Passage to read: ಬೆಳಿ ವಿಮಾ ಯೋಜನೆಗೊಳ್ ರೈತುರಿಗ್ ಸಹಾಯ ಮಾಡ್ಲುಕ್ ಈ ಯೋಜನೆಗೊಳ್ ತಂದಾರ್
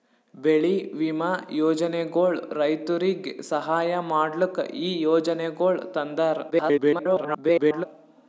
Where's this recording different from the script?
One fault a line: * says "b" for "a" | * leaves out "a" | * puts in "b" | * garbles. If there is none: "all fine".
* garbles